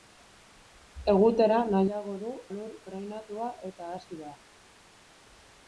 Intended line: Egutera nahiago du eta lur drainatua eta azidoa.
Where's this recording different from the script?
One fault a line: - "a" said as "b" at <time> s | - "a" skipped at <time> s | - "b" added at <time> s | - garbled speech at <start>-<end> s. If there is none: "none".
- "eta" skipped at 2.3 s